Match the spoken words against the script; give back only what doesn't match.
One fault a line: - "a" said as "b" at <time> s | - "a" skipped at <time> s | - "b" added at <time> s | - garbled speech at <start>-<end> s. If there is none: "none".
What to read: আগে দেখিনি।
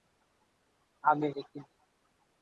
none